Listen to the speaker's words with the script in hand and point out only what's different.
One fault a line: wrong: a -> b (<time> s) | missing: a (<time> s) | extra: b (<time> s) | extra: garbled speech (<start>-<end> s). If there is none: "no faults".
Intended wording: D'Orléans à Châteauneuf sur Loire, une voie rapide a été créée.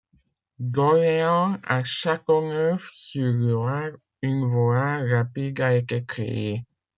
no faults